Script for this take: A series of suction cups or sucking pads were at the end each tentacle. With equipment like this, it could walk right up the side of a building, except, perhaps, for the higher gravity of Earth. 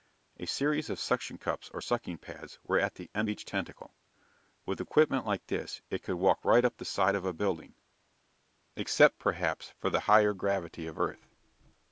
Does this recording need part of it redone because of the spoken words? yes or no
no